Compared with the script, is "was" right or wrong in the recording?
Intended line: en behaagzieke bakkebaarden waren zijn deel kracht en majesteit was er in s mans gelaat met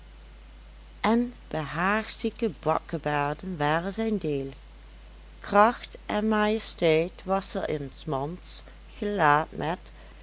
right